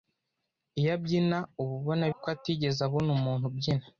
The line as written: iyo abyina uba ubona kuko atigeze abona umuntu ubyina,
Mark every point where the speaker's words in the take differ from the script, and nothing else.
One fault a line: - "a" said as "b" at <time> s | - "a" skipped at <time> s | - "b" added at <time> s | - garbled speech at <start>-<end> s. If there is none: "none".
none